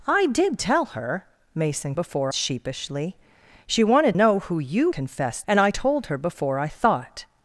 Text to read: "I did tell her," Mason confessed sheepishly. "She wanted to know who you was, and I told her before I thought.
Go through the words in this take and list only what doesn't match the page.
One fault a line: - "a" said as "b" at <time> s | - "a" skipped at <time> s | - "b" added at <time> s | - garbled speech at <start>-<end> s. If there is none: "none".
- "confessed" said as "before" at 1.9 s
- "to" skipped at 4.1 s
- "was" said as "confessed" at 4.9 s